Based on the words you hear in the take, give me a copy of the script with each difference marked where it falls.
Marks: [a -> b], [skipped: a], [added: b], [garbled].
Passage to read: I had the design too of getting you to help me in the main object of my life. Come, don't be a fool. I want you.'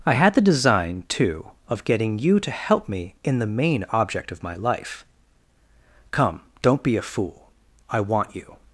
I had the design too of getting you to help me in the main object of my life. Come, don't be a fool. I want you.'